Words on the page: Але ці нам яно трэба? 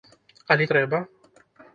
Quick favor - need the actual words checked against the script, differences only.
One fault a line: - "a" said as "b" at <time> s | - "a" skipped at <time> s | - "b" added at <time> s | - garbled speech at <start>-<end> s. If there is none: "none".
- "ці нам яно" skipped at 0.7 s